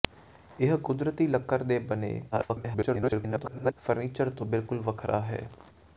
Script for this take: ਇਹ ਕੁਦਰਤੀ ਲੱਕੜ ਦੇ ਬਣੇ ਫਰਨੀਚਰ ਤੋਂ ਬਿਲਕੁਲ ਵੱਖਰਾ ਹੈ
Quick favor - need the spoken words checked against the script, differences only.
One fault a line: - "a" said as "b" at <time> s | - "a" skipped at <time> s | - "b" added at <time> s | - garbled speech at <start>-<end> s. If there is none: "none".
- garbled speech at 2.3-3.7 s